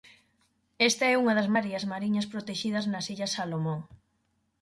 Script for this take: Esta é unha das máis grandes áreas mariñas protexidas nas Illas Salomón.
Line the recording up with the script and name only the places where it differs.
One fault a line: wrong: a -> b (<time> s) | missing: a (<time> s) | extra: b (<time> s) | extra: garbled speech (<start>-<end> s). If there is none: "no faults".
missing: máis grandes (1.5 s)